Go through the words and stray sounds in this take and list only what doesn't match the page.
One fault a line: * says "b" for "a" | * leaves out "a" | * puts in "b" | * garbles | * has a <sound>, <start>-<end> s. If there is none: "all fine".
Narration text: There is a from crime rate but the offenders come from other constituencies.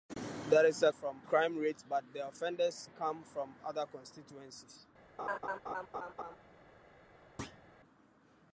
* has a laugh, 5.2-6.4 s
* has a thud, 7.4-7.6 s